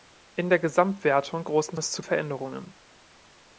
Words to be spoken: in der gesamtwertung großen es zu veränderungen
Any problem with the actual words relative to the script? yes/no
no